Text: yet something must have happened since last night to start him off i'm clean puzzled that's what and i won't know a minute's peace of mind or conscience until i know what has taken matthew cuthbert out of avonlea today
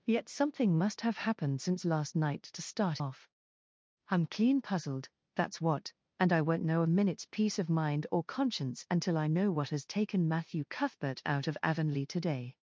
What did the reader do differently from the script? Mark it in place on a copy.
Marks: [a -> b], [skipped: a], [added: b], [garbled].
yet something must have happened since last night to start [skipped: him] off i'm clean puzzled that's what and i won't know a minute's peace of mind or conscience until i know what has taken matthew cuthbert out of avonlea today